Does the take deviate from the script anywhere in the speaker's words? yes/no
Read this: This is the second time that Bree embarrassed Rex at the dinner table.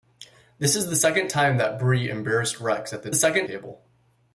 yes